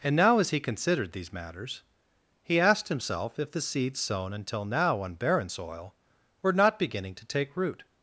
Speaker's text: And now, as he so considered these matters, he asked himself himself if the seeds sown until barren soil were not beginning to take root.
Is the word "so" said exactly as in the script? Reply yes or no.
no